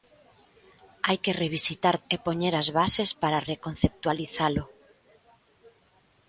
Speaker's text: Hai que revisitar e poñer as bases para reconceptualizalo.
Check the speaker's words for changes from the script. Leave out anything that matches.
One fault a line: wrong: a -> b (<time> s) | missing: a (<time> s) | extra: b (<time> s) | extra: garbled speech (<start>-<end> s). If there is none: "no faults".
no faults